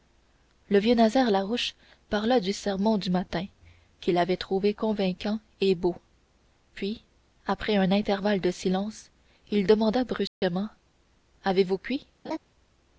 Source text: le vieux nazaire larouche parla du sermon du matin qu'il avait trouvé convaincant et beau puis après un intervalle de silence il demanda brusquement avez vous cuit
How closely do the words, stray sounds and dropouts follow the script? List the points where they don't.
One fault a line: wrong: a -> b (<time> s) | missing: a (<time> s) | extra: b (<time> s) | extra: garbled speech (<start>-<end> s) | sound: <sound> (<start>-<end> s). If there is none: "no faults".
sound: dropout (10.3-10.4 s)
sound: laugh (12.2-12.4 s)